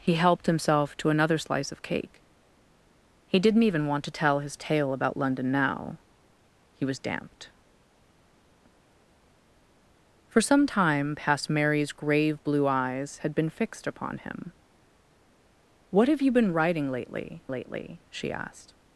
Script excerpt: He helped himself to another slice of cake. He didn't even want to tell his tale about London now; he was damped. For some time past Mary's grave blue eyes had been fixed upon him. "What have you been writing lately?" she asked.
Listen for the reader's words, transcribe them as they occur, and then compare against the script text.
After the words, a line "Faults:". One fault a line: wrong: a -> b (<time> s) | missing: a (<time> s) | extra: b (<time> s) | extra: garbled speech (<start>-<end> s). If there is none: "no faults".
He helped himself to another slice of cake. He didn't even want to tell his tale about London now; he was damped. For some time past Mary's grave blue eyes had been fixed upon him. "What have you been writing lately lately?" she asked.
Faults:
extra: lately (17.5 s)